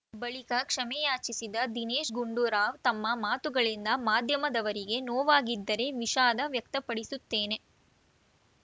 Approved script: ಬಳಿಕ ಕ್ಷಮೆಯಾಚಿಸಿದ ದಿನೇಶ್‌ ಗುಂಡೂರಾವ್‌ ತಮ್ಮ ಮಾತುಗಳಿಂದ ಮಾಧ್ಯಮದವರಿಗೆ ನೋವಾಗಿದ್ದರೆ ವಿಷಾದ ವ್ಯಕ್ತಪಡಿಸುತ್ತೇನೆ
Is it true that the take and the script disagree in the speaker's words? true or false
false